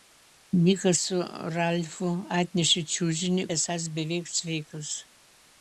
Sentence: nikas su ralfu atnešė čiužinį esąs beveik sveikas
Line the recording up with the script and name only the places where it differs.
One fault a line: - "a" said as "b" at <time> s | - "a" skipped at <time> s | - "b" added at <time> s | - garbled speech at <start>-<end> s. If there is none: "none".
none